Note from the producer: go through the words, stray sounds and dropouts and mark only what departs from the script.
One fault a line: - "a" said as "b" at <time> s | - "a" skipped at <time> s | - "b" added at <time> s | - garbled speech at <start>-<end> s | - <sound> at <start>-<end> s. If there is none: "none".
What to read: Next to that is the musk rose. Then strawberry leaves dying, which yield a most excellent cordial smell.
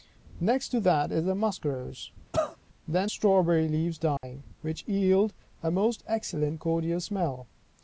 - cough at 2.3-2.6 s
- dropout at 4.2-4.2 s